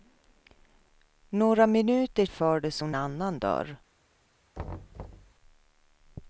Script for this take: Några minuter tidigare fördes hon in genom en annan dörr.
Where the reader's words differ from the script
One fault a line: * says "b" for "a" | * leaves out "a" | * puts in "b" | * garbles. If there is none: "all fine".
* leaves out "tidigare"
* leaves out "in genom en"